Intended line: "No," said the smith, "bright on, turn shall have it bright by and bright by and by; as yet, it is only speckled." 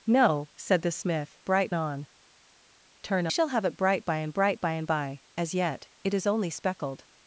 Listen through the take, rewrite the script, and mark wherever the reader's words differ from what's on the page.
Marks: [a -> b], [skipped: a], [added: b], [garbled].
"No," said the smith, "bright on, turn shall have it bright by and bright by and by; as yet, it is only speckled."